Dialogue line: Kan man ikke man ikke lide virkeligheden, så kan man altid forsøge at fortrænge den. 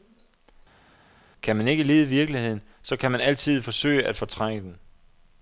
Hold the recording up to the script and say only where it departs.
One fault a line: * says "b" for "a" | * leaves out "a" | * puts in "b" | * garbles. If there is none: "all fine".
* leaves out "man ikke"